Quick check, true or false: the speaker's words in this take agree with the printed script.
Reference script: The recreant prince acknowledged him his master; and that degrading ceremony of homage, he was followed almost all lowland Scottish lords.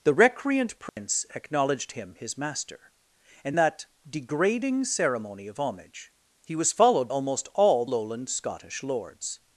true